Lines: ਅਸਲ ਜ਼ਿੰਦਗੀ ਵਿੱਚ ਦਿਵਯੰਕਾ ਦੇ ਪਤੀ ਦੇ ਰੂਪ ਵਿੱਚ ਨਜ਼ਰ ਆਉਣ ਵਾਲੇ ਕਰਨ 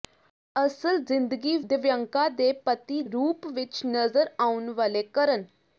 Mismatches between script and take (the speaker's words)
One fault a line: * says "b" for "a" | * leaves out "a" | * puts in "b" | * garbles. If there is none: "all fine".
* leaves out "ਵਿੱਚ"
* leaves out "ਦੇ"